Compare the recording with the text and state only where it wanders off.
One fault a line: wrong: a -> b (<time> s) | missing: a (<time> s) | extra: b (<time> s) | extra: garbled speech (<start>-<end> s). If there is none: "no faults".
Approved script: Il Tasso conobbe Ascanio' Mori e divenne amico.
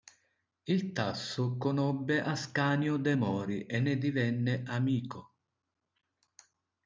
extra: de (3.0 s)
extra: ne (3.8 s)